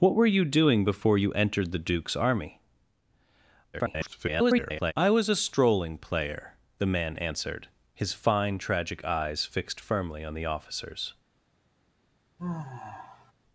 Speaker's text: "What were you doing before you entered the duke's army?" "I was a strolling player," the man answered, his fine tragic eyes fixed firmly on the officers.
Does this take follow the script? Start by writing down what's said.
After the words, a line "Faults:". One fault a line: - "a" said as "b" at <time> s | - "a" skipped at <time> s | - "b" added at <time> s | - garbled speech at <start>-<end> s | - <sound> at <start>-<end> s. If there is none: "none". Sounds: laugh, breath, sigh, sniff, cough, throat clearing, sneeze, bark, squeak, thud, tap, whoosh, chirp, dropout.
"What were you doing before you entered the duke's army?" [garbled] "I was a strolling player," the man answered, his fine tragic eyes fixed firmly on the officers.
Faults:
- garbled speech at 3.7-4.9 s
- sigh at 12.4-13.3 s